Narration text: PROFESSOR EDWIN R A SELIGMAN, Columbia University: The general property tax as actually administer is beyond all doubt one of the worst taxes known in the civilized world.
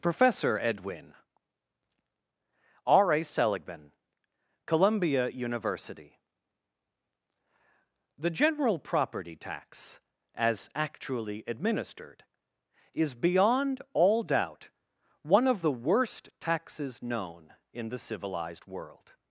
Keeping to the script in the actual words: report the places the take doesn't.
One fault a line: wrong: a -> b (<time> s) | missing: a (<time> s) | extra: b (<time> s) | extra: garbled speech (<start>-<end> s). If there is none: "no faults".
wrong: administer -> administered (11.5 s)